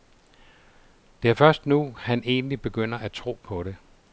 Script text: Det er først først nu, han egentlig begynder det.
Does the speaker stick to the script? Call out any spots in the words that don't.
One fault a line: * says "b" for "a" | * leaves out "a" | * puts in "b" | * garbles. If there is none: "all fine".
* leaves out "først"
* puts in "at tro på"